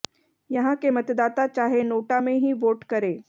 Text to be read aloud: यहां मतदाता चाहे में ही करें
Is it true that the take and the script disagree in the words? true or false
true